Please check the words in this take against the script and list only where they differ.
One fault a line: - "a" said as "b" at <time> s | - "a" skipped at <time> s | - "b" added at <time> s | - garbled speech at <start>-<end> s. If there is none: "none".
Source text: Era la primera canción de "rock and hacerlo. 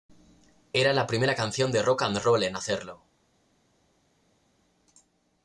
- "roll en" added at 2.2 s